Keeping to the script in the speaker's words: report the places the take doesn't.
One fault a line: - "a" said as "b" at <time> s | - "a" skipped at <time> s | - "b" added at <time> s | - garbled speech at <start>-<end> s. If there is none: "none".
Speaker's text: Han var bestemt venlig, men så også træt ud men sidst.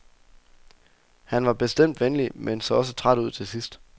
- "men" said as "til" at 3.3 s